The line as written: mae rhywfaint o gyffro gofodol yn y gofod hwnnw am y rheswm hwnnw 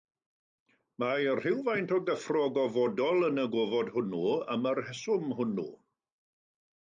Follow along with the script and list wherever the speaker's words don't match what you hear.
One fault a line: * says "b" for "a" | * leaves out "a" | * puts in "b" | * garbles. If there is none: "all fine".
all fine